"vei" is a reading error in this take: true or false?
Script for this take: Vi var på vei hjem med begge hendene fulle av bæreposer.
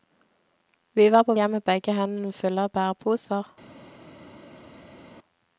true